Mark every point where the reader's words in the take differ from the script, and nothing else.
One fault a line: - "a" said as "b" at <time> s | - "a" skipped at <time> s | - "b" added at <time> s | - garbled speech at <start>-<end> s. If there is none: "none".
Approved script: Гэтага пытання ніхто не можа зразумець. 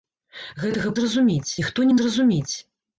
- "пытання" said as "зразумець" at 1.0 s
- "можа" skipped at 1.9 s